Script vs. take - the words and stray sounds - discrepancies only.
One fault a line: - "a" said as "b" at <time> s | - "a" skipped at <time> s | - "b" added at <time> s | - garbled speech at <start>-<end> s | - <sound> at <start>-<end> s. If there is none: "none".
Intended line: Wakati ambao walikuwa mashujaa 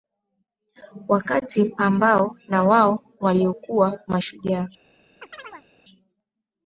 - "na wao" added at 2.5 s
- chirp at 5.2-5.7 s